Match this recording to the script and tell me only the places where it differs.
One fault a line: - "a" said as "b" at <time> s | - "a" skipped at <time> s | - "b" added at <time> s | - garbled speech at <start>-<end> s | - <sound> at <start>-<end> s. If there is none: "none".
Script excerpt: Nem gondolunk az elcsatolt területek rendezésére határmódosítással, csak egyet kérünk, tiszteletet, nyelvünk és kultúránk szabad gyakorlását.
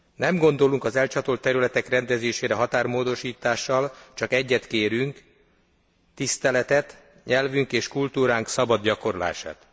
none